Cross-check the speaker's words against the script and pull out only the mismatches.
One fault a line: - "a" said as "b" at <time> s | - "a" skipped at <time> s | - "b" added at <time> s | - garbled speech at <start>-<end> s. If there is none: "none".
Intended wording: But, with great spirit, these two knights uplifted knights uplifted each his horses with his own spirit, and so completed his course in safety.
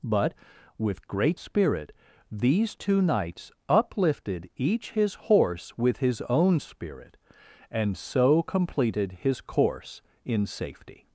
- "knights uplifted" skipped at 4.5 s
- "horses" said as "horse" at 5.2 s